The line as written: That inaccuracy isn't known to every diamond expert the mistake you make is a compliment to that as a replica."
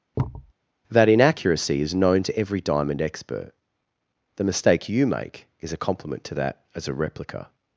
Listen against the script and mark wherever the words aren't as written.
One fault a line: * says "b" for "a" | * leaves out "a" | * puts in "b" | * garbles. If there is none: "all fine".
* says "is" for "isn't"